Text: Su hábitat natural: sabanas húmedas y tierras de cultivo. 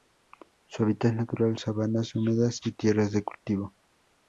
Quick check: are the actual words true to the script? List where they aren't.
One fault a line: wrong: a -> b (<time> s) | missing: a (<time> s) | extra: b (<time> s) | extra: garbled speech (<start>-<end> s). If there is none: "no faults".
no faults